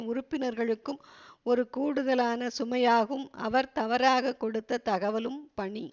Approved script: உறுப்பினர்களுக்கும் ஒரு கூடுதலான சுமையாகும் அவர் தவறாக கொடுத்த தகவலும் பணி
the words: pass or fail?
pass